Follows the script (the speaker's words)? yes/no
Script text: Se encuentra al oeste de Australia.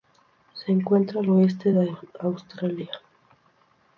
yes